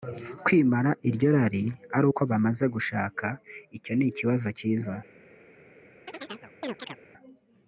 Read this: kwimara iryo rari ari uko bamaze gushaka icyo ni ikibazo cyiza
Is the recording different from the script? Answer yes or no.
no